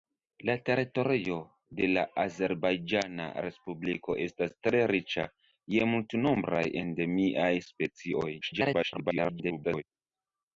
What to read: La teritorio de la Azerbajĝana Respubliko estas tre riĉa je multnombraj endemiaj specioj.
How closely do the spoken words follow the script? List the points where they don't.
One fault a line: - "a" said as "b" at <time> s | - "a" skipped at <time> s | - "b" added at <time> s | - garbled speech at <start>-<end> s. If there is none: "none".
- garbled speech at 8.4-9.8 s